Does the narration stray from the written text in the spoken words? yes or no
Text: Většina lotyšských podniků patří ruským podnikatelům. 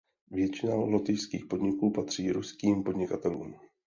no